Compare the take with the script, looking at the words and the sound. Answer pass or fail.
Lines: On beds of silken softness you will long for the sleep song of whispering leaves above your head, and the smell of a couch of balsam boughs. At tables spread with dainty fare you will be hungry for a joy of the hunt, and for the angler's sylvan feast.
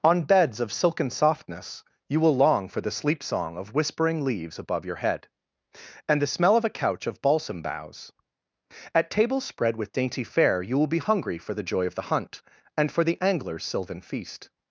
fail